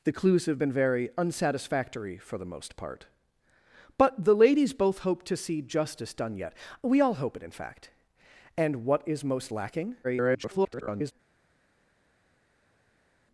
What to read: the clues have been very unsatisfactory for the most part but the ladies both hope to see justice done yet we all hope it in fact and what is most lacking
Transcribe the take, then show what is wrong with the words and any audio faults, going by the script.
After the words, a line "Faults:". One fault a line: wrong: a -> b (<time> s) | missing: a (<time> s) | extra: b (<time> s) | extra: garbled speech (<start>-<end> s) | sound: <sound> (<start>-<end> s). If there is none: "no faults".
the clues have been very unsatisfactory for the most part but the ladies both hope to see justice done yet we all hope it in fact and what is most lacking [garbled]
Faults:
extra: garbled speech (10.0-11.1 s)